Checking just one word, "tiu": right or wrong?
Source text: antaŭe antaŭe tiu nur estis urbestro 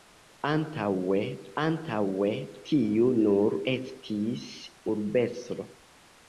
right